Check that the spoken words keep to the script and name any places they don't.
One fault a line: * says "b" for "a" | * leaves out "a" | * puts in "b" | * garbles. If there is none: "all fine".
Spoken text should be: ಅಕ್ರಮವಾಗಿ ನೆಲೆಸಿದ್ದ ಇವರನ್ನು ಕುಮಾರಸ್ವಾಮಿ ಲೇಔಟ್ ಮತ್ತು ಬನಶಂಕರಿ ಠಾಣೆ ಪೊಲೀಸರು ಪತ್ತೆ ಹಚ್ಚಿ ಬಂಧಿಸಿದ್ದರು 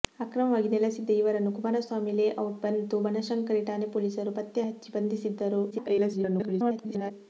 * garbles